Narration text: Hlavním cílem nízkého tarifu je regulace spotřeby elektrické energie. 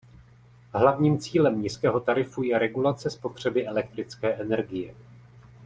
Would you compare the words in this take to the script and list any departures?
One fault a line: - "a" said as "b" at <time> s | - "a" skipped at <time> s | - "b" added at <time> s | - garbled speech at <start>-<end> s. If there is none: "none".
none